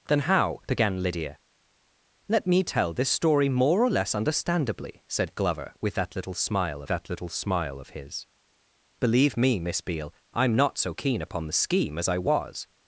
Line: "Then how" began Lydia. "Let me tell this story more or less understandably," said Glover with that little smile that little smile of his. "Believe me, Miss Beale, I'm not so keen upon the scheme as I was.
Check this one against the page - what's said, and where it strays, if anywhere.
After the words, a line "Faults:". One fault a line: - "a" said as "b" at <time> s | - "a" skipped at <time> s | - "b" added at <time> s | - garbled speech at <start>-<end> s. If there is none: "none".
"Then how" began Lydia. "Let me tell this story more or less understandably," said Glover with that little smile that little smile of his. "Believe me, Miss Beale, I'm not so keen upon the scheme as I was.
Faults:
none